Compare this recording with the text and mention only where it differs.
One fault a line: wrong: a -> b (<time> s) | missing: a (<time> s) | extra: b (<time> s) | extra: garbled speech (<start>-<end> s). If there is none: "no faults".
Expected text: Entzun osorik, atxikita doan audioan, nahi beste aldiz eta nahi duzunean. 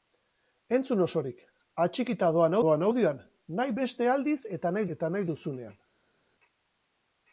extra: doan (2.6 s)
extra: eta nahi (5.0 s)